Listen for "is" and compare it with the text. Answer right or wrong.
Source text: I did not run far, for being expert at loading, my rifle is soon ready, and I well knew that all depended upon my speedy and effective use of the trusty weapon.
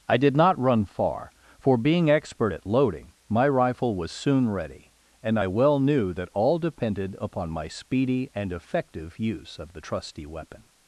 wrong